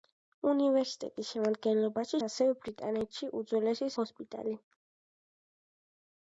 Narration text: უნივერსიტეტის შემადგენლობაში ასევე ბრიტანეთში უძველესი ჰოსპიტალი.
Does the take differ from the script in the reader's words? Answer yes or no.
no